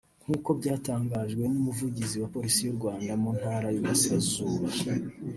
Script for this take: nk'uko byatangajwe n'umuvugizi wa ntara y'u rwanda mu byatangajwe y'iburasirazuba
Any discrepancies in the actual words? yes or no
yes